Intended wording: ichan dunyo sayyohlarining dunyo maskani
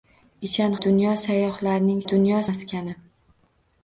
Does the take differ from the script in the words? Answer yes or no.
no